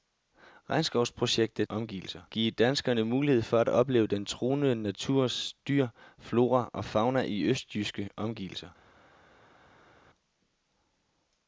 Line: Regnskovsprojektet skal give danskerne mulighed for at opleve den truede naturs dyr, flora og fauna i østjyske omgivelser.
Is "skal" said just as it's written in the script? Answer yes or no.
no